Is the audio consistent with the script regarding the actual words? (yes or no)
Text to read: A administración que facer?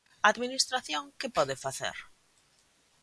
no